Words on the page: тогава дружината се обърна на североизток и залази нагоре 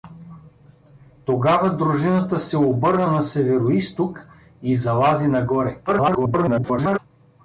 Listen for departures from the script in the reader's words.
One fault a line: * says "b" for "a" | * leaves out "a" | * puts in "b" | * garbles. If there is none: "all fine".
* garbles